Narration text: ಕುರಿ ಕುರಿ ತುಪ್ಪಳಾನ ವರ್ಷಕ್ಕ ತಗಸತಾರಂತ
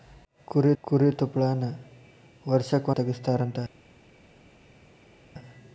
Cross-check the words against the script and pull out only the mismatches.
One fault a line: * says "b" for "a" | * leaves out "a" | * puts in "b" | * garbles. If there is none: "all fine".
all fine